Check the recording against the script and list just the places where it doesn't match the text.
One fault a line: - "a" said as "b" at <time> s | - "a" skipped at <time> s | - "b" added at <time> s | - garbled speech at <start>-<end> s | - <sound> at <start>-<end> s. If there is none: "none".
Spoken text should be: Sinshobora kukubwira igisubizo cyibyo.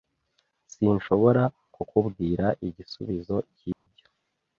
- dropout at 3.7-3.9 s